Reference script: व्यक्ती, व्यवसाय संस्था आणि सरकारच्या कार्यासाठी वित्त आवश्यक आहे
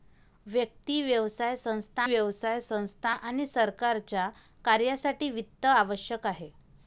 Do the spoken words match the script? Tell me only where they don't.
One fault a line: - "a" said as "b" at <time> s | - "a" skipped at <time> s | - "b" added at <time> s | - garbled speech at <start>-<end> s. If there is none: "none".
- "व्यवसाय संस्था" added at 2.0 s